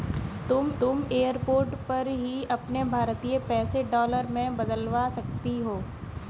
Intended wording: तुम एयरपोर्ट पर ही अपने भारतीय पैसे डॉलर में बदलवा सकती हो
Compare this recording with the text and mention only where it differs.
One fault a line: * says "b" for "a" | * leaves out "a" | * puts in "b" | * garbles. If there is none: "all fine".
* puts in "तुम"